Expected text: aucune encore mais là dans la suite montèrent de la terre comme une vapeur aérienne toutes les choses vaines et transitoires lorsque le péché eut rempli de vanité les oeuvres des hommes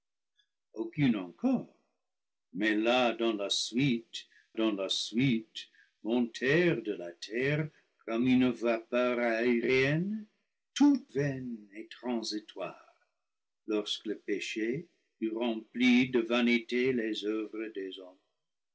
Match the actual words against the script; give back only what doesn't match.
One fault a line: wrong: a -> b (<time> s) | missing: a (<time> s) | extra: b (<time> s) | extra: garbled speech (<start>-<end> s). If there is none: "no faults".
extra: dans la suite (4.5 s)
missing: les choses (11.1 s)